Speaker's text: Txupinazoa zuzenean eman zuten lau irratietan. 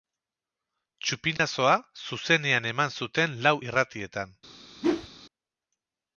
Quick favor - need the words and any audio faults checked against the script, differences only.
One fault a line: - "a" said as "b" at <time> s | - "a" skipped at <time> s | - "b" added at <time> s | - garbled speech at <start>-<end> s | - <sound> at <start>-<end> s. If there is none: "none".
- dropout at 1.4-1.4 s
- whoosh at 4.8-5.1 s